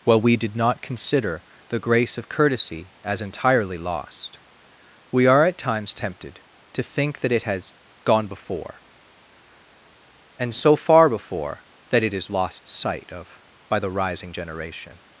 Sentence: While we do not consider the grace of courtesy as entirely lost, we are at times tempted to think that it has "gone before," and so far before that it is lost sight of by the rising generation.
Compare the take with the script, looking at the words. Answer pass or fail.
fail